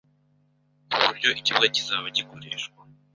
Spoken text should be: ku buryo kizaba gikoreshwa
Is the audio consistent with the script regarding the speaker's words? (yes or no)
no